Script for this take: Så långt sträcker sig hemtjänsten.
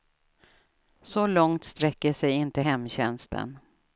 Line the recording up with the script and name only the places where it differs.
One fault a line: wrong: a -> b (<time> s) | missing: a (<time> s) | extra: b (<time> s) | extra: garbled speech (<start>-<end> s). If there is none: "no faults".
extra: inte (2.3 s)